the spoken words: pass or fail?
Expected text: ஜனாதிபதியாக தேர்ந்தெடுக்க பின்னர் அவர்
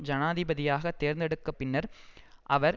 pass